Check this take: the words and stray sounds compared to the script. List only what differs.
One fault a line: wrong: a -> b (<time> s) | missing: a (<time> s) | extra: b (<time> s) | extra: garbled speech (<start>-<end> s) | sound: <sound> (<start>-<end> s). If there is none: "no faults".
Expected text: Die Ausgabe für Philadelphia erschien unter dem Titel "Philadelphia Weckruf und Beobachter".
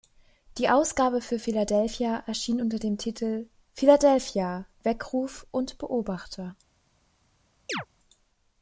sound: chirp (7.7-7.9 s)